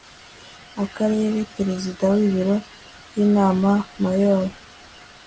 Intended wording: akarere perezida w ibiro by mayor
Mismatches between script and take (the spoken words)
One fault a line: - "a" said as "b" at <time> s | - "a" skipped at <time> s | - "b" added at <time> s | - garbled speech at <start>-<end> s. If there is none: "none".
- "inama" added at 3.2 s